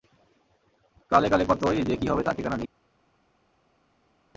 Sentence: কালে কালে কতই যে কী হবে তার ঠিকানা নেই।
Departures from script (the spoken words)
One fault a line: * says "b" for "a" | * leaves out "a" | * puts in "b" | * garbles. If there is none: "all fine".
all fine